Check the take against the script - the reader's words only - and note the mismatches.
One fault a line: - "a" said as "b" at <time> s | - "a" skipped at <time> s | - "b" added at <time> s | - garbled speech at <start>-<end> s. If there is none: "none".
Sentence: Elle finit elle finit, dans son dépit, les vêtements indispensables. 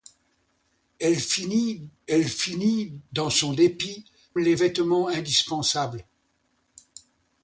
none